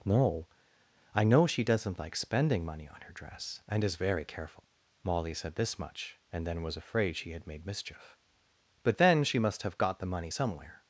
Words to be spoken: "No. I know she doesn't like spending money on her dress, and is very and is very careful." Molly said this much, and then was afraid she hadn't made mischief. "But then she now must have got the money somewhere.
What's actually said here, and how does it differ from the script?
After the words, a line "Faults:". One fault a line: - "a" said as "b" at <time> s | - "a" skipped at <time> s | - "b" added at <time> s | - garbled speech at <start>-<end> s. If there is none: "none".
"No. I know she doesn't like spending money on her dress, and is very careful." Molly said this much, and then was afraid she had made mischief. "But then she must have got the money somewhere.
Faults:
- "and is very" skipped at 4.2 s
- "hadn't" said as "had" at 7.3 s
- "now" skipped at 9.4 s